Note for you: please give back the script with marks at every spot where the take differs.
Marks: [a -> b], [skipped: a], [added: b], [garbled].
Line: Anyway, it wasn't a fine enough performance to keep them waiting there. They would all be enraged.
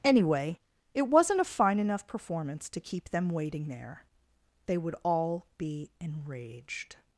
Anyway, it wasn't a fine enough performance to keep them waiting there. They would all be enraged.